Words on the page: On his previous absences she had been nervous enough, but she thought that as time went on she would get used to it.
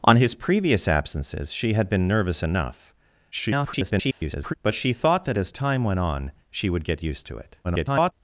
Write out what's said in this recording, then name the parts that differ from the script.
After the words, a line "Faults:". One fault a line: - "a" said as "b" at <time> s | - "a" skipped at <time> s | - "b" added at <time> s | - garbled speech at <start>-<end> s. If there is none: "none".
On his previous absences she had been nervous enough, [garbled] but she thought that as time went on she would get used to it. [garbled]
Faults:
- garbled speech at 3.3-4.5 s
- garbled speech at 7.6-8.1 s